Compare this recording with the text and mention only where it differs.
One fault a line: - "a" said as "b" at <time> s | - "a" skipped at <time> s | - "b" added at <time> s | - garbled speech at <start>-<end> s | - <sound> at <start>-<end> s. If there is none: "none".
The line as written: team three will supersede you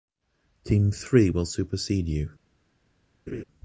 - laugh at 3.3-3.4 s